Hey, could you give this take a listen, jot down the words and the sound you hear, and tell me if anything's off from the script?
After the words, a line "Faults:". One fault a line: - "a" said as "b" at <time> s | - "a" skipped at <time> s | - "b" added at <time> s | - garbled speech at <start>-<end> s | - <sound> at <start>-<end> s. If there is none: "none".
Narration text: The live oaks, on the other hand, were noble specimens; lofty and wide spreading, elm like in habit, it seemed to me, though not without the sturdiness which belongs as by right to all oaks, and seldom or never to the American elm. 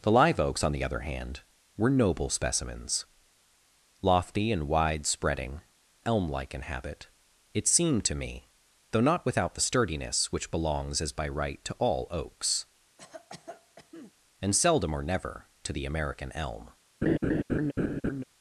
The live oaks, on the other hand, were noble specimens; lofty and wide spreading, elm like in habit, it seemed to me, though not without the sturdiness which belongs as by right to all oaks, and seldom or never to the American elm.
Faults:
- cough at 13.0-14.1 s
- laugh at 17.0-18.2 s